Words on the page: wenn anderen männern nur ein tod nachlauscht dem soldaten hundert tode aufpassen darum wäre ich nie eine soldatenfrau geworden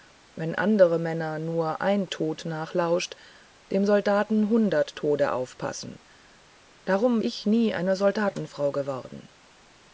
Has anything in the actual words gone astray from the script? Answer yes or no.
yes